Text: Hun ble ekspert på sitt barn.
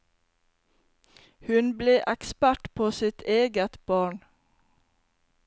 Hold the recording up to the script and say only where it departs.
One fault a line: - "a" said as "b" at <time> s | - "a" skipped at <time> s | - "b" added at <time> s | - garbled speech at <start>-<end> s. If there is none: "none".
- "eget" added at 3.4 s